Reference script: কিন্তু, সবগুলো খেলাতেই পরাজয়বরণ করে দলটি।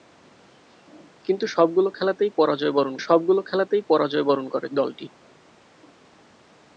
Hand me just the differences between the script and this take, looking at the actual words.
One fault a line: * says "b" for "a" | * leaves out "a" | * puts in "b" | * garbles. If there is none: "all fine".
* puts in "সবগুলো খেলাতেই পরাজয়বরণ"